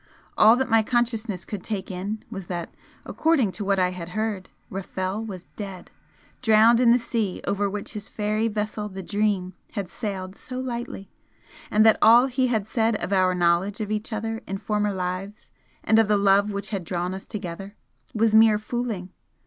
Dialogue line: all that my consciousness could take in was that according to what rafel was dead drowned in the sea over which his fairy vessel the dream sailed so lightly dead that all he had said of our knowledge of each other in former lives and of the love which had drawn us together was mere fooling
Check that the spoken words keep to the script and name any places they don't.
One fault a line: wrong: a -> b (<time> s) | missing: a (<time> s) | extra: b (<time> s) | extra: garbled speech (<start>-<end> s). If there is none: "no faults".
extra: i had heard (3.8 s)
extra: had (9.7 s)
wrong: dead -> and (11.7 s)